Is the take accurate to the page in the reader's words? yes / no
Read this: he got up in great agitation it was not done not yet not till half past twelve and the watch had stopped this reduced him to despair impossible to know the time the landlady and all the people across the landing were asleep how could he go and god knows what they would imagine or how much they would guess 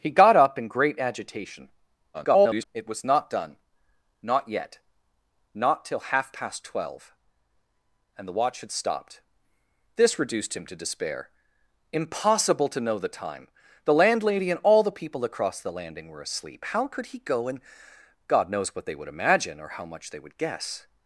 no